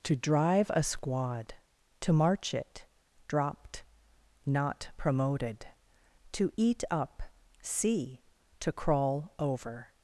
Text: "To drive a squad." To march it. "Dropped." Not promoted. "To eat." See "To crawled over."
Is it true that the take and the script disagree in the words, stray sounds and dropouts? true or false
true